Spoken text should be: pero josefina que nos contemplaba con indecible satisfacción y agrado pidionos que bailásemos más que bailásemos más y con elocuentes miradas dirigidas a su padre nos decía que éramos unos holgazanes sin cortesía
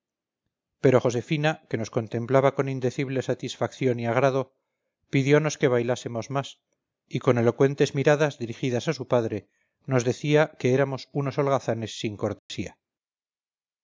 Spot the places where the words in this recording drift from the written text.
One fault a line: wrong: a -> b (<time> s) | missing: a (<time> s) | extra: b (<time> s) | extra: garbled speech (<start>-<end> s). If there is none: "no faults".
missing: que bailásemos más (6.6 s)